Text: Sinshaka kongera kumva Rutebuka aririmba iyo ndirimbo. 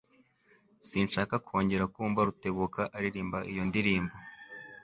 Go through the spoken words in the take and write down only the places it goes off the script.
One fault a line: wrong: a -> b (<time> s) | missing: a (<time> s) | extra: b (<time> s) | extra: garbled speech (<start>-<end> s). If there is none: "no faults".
no faults